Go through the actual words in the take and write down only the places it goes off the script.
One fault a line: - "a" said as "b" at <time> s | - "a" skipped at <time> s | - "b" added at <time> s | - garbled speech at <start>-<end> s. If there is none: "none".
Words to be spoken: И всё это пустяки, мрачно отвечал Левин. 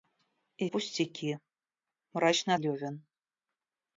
- "всё это" skipped at 0.7 s
- "отвечал" skipped at 2.5 s